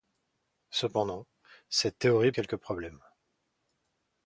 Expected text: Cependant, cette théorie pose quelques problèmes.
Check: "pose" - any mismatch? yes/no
yes